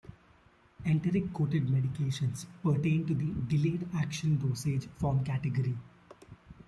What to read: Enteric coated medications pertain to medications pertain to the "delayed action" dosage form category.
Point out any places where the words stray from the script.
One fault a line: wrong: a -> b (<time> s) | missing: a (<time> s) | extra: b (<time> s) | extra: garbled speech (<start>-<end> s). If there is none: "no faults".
missing: medications pertain to (3.2 s)